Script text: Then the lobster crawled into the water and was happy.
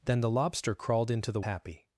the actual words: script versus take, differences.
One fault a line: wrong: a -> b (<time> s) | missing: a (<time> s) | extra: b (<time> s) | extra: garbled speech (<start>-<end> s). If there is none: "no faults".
missing: water and was (1.4 s)